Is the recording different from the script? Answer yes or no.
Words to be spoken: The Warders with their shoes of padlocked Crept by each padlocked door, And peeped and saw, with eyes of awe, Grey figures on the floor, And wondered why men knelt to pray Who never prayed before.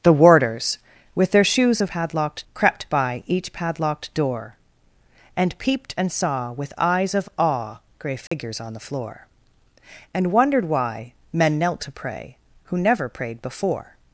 no